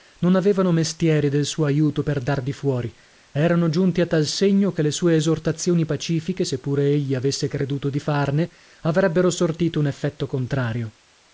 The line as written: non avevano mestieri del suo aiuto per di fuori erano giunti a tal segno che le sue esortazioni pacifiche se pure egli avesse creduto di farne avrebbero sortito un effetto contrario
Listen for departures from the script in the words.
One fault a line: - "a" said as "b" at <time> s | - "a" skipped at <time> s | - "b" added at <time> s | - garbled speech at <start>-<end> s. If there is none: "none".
- "dar" added at 2.2 s